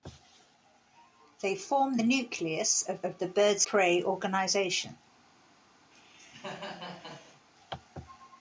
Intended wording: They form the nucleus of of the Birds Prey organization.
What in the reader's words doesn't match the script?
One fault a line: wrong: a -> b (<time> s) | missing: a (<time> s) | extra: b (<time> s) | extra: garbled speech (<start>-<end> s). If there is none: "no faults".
no faults